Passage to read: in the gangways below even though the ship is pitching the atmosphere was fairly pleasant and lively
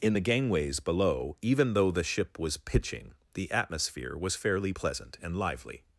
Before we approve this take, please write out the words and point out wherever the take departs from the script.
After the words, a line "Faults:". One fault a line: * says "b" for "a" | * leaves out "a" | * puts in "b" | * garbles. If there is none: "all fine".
in the gangways below even though the ship was pitching the atmosphere was fairly pleasant and lively
Faults:
* says "was" for "is"